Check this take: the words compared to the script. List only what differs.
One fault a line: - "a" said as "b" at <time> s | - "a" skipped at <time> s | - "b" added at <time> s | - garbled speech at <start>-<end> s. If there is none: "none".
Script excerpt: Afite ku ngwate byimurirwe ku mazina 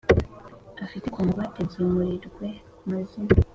none